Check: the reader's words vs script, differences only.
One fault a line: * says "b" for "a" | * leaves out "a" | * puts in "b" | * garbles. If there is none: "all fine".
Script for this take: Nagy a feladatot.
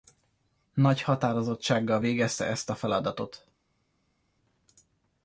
* puts in "határozottsággal végezte ezt"